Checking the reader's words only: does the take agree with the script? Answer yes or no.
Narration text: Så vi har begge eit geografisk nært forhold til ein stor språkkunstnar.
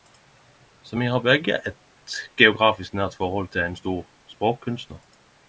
yes